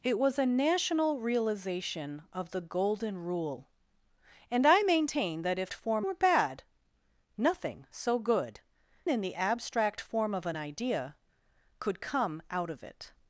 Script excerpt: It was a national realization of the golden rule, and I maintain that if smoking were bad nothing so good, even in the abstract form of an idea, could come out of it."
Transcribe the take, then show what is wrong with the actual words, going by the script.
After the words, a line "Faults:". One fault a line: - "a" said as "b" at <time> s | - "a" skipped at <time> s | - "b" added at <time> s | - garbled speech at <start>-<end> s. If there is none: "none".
It was a national realization of the golden rule, and I maintain that if form were bad nothing so good, in the abstract form of an idea, could come out of it."
Faults:
- "smoking" said as "form" at 5.7 s
- "even" skipped at 8.6 s